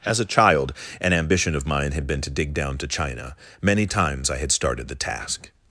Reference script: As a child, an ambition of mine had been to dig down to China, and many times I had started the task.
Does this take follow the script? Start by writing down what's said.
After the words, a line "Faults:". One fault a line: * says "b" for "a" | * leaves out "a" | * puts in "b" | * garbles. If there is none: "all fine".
As a child, an ambition of mine had been to dig down to China, many times I had started the task.
Faults:
* leaves out "and"